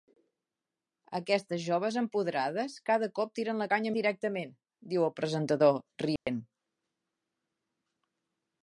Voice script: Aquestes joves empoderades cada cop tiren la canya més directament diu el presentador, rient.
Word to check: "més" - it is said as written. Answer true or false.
false